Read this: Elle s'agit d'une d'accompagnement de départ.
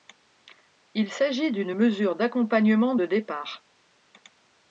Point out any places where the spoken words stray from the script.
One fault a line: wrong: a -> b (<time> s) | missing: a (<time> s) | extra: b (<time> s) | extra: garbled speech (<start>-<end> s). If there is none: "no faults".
wrong: Elle -> Il (0.9 s)
extra: mesure (1.7 s)